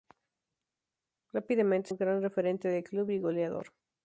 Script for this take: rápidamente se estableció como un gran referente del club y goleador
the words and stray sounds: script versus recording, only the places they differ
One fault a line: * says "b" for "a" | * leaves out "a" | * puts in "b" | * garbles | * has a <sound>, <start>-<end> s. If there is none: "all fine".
* leaves out "se estableció como"